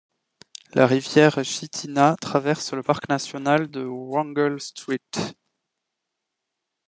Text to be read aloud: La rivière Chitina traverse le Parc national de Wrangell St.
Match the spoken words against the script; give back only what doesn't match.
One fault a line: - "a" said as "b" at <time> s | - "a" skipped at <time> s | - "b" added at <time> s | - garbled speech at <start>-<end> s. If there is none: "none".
none